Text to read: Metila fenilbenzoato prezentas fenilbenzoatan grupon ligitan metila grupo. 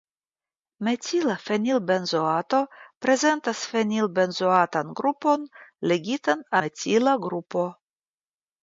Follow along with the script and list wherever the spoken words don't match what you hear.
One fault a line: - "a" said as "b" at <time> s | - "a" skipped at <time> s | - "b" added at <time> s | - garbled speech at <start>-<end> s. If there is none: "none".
none